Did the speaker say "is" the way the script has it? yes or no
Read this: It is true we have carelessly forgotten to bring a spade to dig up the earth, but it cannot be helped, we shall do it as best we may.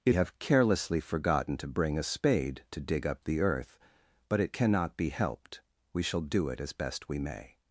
no